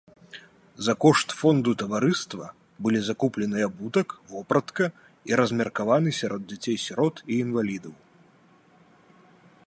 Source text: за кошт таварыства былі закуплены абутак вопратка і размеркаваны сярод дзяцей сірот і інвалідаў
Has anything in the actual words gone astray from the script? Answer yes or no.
yes